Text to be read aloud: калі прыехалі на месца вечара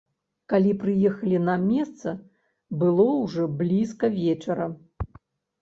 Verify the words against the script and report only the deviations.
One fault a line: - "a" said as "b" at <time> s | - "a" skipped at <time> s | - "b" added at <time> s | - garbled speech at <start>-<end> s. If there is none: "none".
- "было ўжо блізка" added at 2.9 s